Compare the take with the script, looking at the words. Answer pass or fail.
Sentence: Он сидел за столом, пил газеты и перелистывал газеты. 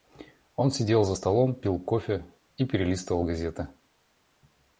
fail